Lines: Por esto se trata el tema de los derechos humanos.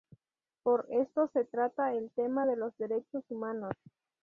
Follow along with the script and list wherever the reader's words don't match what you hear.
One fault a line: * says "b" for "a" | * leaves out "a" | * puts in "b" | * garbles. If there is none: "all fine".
all fine